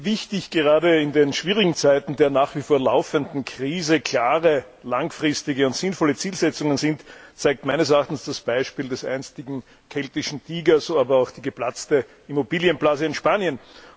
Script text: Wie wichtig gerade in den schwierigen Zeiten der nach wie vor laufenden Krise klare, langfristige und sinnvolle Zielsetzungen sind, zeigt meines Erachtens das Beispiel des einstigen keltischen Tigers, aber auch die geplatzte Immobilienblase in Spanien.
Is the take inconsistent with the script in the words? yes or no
no